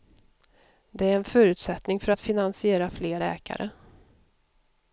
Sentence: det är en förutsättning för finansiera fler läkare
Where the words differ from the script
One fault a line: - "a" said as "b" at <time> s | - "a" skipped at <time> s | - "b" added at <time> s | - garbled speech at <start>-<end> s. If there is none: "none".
- "att" added at 2.1 s